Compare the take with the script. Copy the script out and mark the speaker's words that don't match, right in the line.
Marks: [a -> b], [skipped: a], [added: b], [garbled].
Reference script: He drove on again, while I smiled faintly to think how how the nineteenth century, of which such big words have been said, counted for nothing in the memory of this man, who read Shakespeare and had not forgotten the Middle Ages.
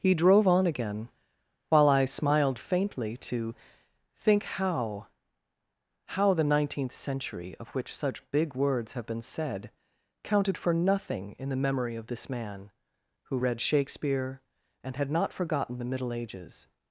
He drove on again, while I smiled faintly to think how how the nineteenth century, of which such big words have been said, counted for nothing in the memory of this man, who read Shakespeare and had not forgotten the Middle Ages.